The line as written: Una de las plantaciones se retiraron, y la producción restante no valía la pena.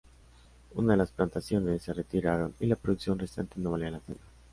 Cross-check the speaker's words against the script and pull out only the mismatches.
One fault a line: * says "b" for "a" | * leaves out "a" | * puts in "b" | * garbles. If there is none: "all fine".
all fine